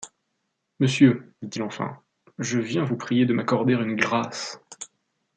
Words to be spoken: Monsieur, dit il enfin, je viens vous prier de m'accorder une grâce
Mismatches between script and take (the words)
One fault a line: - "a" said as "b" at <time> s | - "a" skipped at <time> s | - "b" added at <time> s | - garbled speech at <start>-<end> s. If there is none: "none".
none